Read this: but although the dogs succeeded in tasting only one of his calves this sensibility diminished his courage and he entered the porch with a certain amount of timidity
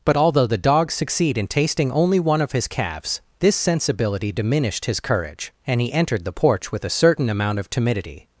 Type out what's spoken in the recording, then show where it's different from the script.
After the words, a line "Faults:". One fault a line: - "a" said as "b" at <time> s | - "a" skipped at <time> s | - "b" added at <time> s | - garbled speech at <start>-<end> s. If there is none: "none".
but although the dogs succeed in tasting only one of his calves this sensibility diminished his courage and he entered the porch with a certain amount of timidity
Faults:
- "succeeded" said as "succeed" at 0.9 s